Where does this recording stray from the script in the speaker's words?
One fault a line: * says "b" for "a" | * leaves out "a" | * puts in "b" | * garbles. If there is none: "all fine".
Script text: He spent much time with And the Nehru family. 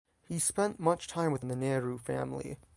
all fine